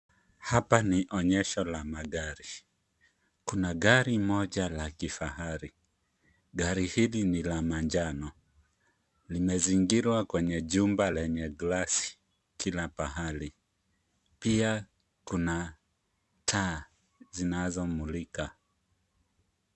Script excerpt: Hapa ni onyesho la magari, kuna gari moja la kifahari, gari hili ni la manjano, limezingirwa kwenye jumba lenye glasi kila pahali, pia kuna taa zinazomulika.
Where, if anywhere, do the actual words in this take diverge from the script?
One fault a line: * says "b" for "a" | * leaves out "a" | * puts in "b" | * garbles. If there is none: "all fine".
all fine